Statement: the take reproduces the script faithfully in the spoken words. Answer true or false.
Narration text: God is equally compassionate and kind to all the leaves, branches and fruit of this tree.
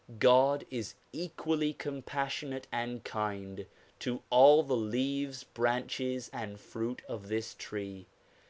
true